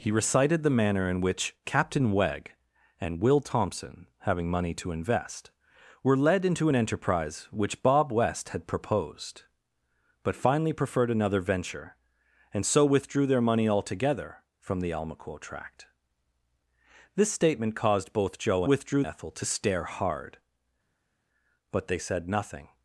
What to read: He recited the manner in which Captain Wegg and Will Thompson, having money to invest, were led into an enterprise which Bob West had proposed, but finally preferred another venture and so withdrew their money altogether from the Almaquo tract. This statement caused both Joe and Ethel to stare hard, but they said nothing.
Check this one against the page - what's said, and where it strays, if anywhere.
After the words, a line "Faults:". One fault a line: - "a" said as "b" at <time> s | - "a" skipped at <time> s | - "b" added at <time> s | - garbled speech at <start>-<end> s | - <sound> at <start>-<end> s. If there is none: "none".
He recited the manner in which Captain Wegg and Will Thompson, having money to invest, were led into an enterprise which Bob West had proposed, but finally preferred another venture and so withdrew their money altogether from the Almaquo tract. This statement caused both Joe withdrew Ethel to stare hard, but they said nothing.
Faults:
- "and" said as "withdrew" at 18.6 s